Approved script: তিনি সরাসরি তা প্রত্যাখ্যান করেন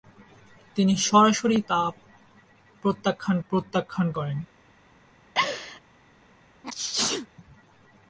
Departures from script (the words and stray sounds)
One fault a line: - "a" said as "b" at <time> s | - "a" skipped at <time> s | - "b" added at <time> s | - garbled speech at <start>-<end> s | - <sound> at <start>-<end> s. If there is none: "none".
- "প্রত্যাখ্যান" added at 3.5 s
- laugh at 5.3-5.8 s
- sneeze at 6.6-7.3 s